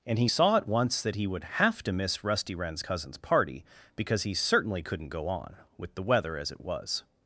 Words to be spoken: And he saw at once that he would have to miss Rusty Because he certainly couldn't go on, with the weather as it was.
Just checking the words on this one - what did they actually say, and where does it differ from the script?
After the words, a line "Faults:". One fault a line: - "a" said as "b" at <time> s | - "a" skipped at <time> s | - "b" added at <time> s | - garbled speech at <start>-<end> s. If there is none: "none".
And he saw at once that he would have to miss Rusty Wren's cousin's party, because he certainly couldn't go on, with the weather as it was.
Faults:
- "Wren's cousin's party" added at 2.5 s